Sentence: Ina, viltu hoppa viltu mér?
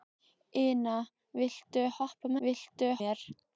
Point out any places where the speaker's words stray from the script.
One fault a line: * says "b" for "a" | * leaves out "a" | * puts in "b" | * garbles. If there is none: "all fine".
all fine